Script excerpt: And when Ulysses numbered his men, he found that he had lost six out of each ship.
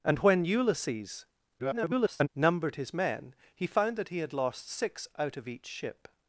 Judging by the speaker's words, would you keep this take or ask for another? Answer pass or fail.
fail